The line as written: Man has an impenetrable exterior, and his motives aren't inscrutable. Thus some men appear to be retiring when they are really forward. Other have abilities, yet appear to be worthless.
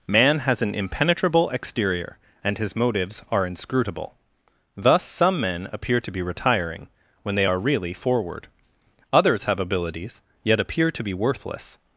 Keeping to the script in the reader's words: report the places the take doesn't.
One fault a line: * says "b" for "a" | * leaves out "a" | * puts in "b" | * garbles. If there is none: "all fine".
* says "are" for "aren't"
* says "Others" for "Other"